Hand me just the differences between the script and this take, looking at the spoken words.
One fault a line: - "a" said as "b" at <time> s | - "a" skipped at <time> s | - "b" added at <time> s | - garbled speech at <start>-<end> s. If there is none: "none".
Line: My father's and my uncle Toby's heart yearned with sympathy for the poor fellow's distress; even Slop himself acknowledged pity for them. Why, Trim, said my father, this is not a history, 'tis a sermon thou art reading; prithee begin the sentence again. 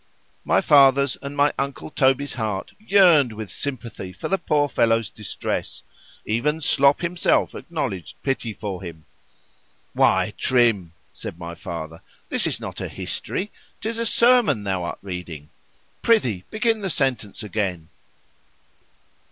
- "them" said as "him" at 8.8 s